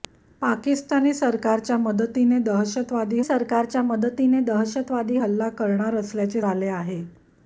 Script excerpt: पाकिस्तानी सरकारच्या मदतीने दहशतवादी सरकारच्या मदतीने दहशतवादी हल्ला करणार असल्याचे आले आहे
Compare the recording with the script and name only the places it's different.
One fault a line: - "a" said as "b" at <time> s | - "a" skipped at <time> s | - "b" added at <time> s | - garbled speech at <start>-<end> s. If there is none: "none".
none